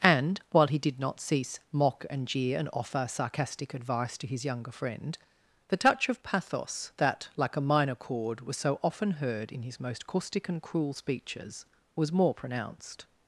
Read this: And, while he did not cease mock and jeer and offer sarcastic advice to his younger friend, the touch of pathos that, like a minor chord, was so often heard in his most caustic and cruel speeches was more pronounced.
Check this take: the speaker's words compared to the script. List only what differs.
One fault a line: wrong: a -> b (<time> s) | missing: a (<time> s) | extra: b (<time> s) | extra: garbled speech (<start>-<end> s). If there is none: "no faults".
no faults